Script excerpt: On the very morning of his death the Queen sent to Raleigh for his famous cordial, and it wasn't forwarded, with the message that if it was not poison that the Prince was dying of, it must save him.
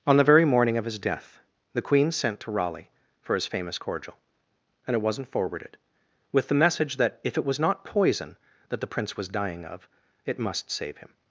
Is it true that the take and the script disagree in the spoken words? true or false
false